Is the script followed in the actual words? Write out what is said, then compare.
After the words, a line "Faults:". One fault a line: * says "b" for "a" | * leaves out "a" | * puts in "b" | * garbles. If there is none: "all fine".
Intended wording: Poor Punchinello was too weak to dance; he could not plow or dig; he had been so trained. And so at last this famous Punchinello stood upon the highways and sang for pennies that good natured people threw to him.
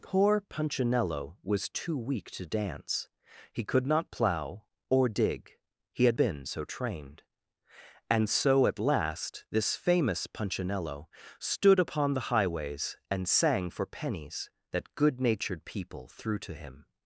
Poor Punchinello was too weak to dance; he could not plow or dig; he had been so trained. And so at last this famous Punchinello stood upon the highways and sang for pennies that good natured people threw to him.
Faults:
all fine